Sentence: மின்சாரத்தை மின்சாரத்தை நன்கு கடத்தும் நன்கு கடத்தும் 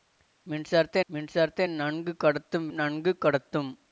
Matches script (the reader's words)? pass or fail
pass